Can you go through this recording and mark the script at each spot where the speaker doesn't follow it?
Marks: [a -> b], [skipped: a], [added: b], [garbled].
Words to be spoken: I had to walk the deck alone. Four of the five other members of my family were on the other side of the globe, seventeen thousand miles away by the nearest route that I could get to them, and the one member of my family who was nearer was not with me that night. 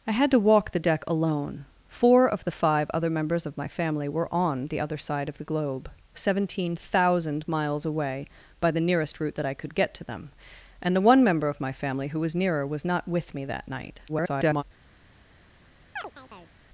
I had to walk the deck alone. Four of the five other members of my family were on the other side of the globe, seventeen thousand miles away by the nearest route that I could get to them, and the one member of my family who was nearer was not with me that night. [garbled]